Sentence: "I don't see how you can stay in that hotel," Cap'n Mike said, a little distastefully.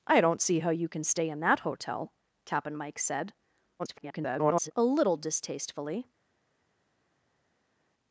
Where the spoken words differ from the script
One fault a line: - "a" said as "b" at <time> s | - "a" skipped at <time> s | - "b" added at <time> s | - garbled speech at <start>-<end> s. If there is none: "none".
- garbled speech at 3.8-4.7 s